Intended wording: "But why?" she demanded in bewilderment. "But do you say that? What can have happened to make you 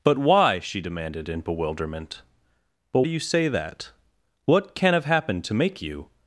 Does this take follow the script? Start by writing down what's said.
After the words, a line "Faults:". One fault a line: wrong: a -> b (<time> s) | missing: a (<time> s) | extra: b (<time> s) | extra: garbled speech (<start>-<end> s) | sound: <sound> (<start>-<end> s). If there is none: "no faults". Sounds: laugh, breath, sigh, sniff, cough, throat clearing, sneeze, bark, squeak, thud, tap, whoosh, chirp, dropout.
"But why?" she demanded in bewilderment. "But do you say that? What can have happened to make you
Faults:
no faults